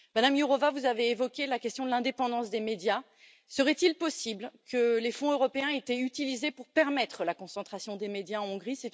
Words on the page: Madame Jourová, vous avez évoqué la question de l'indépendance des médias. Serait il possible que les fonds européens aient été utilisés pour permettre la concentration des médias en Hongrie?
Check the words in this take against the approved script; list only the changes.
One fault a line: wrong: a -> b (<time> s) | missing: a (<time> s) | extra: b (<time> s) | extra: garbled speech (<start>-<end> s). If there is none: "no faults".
no faults